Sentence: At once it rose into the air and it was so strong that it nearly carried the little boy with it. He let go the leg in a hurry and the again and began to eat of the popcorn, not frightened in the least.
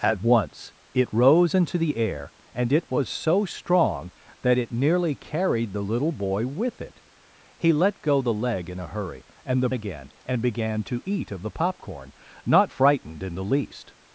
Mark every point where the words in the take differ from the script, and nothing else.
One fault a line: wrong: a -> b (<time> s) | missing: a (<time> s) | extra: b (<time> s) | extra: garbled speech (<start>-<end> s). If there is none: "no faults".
no faults